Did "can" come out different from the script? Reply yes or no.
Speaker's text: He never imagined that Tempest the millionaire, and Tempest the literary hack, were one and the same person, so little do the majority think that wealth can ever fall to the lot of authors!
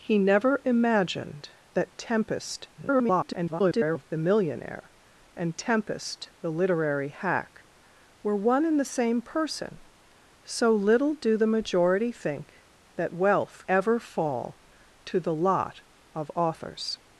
yes